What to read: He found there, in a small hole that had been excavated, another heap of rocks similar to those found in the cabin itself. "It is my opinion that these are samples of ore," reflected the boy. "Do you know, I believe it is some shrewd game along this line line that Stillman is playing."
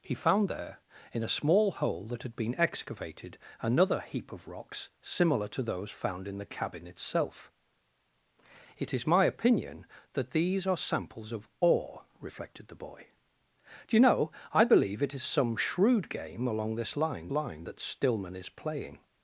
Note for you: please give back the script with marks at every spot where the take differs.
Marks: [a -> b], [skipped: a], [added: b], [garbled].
He found there, in a small hole that had been excavated, another heap of rocks similar to those found in the cabin itself. "It is my opinion that these are samples of ore," reflected the boy. "Do you know, I believe it is some shrewd game along this line line that Stillman is playing."